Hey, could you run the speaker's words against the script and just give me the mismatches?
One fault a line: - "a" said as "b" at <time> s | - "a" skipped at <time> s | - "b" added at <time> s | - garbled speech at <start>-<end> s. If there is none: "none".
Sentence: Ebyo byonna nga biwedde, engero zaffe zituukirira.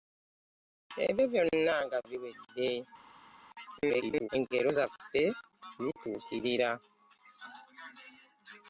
- garbled speech at 3.8-4.3 s